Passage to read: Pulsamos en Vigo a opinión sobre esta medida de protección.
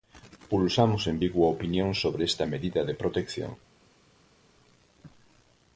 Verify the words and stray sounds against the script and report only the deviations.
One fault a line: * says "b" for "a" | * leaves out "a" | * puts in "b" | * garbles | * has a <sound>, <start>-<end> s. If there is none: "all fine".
all fine